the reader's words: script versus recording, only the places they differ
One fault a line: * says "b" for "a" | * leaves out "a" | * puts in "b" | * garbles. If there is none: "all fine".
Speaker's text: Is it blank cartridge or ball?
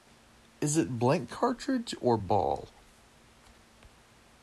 all fine